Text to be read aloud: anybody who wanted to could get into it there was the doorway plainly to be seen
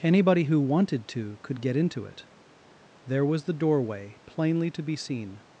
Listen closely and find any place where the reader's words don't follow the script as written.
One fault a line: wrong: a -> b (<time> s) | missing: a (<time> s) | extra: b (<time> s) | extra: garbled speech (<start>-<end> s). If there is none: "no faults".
no faults